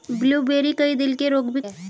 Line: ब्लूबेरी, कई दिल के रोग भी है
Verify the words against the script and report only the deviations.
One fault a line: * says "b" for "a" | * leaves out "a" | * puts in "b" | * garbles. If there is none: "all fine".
all fine